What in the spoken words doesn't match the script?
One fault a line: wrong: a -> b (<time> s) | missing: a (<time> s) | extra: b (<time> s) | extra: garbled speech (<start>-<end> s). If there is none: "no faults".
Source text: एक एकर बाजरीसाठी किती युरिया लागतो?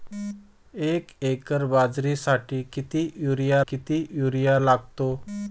extra: किती युरिया (3.7 s)